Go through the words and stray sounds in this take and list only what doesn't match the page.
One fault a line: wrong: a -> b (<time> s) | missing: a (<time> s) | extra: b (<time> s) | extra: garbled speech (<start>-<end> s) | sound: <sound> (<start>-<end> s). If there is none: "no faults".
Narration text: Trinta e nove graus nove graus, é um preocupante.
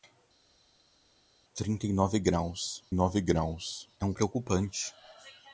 no faults